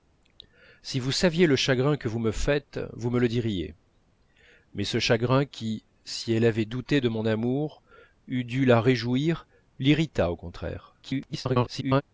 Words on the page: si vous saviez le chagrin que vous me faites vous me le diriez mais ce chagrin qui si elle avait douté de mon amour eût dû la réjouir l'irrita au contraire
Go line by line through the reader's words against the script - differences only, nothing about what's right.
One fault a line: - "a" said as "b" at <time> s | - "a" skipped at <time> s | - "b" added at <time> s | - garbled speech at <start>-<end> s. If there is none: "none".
- garbled speech at 11.0-12.0 s